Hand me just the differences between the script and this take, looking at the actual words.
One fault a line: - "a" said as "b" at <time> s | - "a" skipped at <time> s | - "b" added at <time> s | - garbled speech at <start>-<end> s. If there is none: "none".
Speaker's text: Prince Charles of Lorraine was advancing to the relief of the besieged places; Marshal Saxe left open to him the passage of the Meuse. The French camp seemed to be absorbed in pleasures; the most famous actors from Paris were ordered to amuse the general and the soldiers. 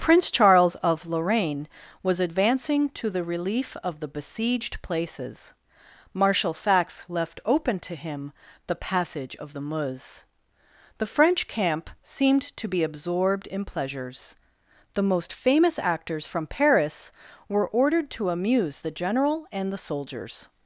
none